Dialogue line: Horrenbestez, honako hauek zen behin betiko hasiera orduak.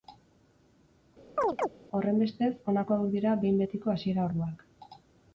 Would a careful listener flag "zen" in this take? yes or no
yes